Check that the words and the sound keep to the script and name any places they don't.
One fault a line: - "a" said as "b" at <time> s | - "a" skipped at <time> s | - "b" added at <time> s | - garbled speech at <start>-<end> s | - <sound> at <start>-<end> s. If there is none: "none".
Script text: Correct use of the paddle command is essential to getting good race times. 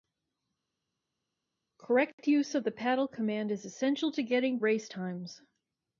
- "good" skipped at 4.6 s